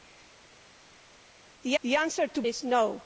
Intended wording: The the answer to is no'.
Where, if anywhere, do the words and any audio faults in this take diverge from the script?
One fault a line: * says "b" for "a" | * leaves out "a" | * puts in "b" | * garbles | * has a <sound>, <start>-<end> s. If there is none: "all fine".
all fine